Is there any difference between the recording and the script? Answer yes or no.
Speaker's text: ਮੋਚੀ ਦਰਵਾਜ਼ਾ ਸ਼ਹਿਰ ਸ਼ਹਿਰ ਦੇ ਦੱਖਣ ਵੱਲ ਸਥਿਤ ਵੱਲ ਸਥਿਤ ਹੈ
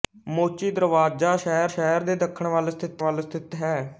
no